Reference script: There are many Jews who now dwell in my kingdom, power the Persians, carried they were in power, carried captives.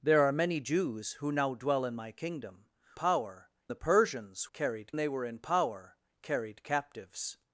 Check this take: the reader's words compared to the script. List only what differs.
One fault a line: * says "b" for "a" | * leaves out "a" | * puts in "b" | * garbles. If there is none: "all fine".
all fine